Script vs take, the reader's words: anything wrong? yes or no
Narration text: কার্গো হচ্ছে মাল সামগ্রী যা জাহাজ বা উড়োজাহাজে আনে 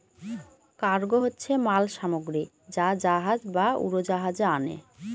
no